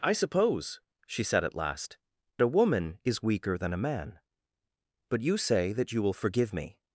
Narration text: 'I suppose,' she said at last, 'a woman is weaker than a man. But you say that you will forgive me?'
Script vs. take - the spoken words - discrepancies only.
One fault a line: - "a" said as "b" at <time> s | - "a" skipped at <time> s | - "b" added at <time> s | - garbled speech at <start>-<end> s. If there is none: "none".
none